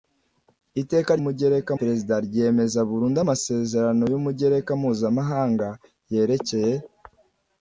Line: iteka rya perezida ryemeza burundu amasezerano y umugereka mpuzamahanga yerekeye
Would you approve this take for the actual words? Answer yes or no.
no